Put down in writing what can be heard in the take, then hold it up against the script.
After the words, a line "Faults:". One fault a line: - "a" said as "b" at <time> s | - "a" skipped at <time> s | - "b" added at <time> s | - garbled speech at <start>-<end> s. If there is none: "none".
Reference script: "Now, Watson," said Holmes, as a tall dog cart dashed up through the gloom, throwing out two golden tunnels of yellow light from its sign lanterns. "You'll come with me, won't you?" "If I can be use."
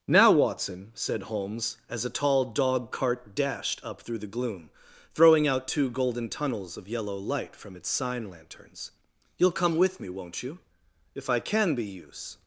"Now, Watson," said Holmes, as a tall dog cart dashed up through the gloom, throwing out two golden tunnels of yellow light from its sign lanterns. "You'll come with me, won't you?" "If I can be use."
Faults:
none